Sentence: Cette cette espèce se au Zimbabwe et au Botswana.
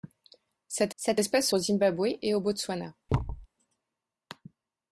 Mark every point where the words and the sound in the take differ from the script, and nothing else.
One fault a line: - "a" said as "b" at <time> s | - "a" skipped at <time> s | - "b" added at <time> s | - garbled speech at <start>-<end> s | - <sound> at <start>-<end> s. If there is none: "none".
- thud at 3.1-3.5 s